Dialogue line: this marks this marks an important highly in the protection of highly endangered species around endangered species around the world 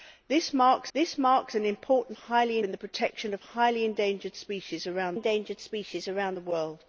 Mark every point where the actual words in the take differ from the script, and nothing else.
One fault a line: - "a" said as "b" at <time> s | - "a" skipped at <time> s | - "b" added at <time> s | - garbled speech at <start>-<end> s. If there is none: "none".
none